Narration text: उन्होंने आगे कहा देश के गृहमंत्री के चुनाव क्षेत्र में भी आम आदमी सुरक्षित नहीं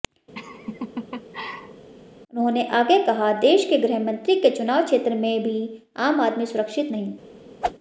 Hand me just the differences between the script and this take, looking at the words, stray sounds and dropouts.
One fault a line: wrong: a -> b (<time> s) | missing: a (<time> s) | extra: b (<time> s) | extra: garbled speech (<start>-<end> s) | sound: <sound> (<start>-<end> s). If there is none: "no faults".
sound: laugh (0.3-1.9 s)
sound: whoosh (7.6-7.8 s)